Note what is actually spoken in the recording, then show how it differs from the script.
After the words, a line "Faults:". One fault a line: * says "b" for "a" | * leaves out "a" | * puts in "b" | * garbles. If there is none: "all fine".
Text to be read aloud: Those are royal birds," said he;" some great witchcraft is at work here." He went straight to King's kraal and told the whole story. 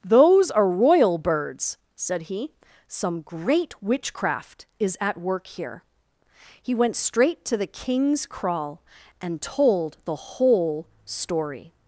Those are royal birds," said he;" some great witchcraft is at work here." He went straight to the King's kraal and told the whole story.
Faults:
* puts in "the"